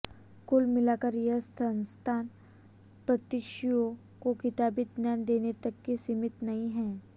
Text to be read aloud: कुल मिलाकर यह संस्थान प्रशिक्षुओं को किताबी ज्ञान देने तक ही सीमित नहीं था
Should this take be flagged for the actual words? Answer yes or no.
yes